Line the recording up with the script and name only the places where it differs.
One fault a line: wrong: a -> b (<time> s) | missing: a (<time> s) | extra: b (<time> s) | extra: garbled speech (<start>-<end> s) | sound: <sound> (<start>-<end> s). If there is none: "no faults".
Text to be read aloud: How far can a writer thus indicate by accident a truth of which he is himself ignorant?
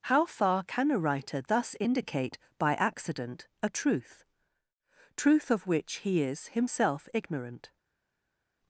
extra: truth (5.2 s)